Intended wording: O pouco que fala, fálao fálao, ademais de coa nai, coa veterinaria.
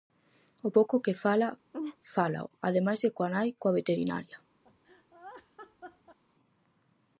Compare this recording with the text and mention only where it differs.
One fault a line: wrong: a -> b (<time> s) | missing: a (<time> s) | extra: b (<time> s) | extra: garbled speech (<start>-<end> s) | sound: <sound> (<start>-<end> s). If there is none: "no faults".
sound: laugh (1.7-2.0 s)
missing: fálao (2.5 s)
sound: laugh (4.6-6.2 s)